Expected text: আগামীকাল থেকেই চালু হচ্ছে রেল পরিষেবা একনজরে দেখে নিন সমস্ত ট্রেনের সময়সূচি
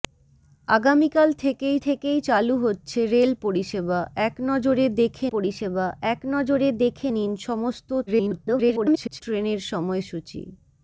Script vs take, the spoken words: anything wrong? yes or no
yes